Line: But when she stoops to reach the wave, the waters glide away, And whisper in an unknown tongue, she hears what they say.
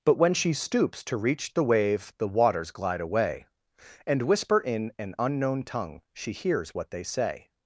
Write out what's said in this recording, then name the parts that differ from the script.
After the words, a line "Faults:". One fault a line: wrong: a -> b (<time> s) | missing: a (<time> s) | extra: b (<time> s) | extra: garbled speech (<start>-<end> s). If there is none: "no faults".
But when she stoops to reach the wave, the waters glide away, And whisper in an unknown tongue, she hears what they say.
Faults:
no faults